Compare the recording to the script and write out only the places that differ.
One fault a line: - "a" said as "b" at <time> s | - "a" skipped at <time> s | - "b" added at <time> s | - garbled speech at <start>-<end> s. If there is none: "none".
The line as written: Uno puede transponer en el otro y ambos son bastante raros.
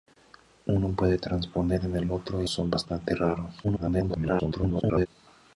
- "ambos" skipped at 2.5 s
- garbled speech at 3.6-5.1 s